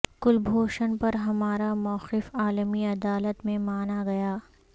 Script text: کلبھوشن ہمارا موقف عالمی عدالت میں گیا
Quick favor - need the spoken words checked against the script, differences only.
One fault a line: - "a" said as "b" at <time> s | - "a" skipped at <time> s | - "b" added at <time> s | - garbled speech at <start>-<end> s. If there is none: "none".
- "پر" added at 1.0 s
- "مانا" added at 3.6 s